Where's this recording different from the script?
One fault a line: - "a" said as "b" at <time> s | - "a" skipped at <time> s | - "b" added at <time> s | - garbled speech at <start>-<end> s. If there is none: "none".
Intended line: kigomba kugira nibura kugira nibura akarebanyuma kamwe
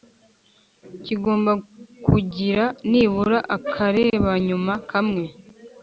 - "kugira nibura" skipped at 3.4 s